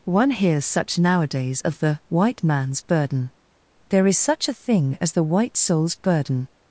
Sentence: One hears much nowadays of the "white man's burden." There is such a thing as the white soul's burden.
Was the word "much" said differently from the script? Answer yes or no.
yes